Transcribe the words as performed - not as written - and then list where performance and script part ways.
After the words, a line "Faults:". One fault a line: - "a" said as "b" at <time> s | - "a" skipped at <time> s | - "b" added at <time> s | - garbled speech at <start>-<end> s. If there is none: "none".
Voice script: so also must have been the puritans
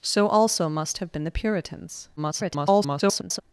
so also must have been the puritans [garbled]
Faults:
- garbled speech at 2.2-3.4 s